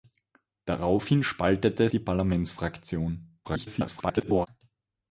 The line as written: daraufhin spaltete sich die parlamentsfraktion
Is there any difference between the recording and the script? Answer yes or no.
yes